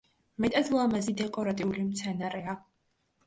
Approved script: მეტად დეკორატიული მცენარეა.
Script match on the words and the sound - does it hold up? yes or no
no